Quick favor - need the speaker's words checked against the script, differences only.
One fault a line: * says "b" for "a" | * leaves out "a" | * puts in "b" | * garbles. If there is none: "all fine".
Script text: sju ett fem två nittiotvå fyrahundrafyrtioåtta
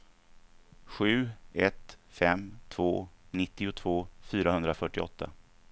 all fine